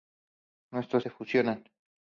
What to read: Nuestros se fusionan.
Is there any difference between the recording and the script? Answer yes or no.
no